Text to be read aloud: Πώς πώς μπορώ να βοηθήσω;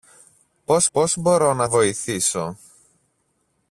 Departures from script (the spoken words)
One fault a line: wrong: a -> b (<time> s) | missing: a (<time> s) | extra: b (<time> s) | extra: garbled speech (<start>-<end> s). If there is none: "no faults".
no faults